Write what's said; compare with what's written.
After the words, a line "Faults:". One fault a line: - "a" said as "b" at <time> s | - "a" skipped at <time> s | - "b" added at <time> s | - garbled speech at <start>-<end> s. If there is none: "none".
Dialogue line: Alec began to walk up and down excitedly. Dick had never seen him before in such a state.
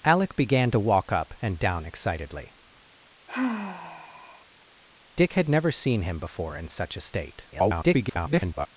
Alec began to walk up and down excitedly. Dick had never seen him before in such a state. [garbled]
Faults:
- garbled speech at 7.5-8.7 s